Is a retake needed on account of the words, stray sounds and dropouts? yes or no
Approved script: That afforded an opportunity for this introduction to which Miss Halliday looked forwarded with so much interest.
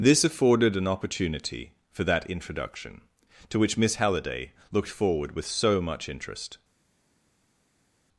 yes